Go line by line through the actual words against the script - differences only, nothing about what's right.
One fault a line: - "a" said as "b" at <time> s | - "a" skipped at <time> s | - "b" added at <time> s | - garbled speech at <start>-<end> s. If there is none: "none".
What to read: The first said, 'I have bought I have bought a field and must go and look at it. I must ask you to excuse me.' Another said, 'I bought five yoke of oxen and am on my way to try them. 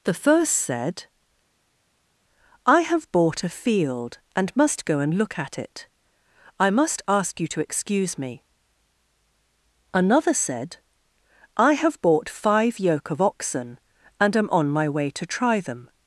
- "I have bought" skipped at 3.4 s
- "have" added at 11.7 s